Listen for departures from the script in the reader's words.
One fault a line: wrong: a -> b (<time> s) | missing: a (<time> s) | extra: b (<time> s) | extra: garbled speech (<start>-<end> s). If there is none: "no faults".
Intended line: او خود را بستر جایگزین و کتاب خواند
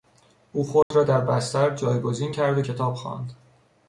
extra: در (1.0 s)
extra: کرد (2.3 s)